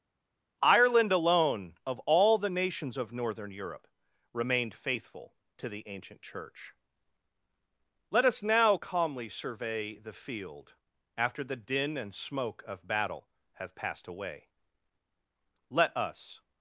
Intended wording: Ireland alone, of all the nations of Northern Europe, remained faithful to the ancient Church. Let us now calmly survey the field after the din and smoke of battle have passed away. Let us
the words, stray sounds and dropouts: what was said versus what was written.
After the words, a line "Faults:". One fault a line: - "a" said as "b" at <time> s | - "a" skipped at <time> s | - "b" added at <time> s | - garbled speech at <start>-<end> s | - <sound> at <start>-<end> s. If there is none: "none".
Ireland alone, of all the nations of Northern Europe, remained faithful to the ancient Church. Let us now calmly survey the field after the din and smoke of battle have passed away. Let us
Faults:
none